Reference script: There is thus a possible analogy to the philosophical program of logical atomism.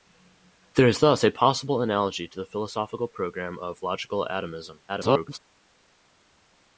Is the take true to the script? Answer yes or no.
no